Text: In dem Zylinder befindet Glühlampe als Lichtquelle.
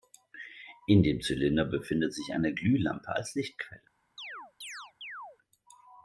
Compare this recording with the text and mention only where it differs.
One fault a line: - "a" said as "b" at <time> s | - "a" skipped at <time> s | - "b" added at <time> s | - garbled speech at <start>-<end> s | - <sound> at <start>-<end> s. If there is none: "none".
- "sich eine" added at 2.1 s
- chirp at 4.2-5.4 s